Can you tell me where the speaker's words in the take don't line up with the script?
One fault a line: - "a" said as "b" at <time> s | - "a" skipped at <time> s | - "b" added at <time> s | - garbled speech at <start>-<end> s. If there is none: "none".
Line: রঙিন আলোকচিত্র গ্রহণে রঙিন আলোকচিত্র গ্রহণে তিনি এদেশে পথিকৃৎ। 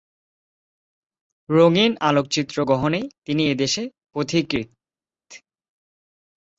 - "রঙিন আলোকচিত্র গ্রহণে" skipped at 3.0 s